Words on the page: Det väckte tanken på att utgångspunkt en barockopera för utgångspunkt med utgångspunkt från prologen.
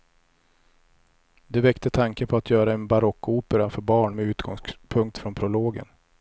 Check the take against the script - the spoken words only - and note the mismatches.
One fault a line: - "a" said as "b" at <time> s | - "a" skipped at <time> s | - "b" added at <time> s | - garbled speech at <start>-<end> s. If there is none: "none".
- "utgångspunkt" said as "göra" at 2.5 s
- "utgångspunkt" said as "barn" at 3.8 s